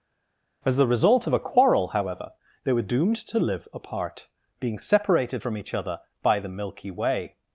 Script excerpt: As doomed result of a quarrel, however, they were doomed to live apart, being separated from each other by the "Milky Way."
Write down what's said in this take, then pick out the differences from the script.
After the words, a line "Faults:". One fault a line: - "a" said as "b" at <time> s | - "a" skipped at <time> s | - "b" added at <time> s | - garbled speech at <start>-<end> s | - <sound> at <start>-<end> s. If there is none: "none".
As the result of a quarrel, however, they were doomed to live apart, being separated from each other by the "Milky Way."
Faults:
- "doomed" said as "the" at 0.8 s